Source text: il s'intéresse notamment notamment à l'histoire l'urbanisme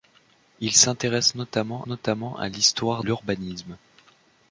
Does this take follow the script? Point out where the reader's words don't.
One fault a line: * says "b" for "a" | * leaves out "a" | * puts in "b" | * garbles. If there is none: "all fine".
all fine